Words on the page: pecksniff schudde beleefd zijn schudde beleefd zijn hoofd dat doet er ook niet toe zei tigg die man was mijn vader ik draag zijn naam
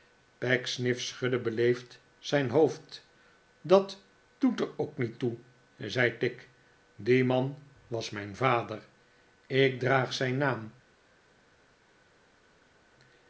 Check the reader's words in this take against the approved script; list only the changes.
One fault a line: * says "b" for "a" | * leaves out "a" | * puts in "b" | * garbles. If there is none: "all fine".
* leaves out "schudde beleefd zijn"